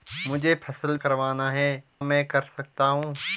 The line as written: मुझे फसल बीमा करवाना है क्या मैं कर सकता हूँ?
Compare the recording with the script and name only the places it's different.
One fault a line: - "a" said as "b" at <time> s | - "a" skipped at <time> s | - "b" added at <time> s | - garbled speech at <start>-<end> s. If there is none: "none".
- "बीमा" skipped at 1.0 s
- "क्या" skipped at 1.8 s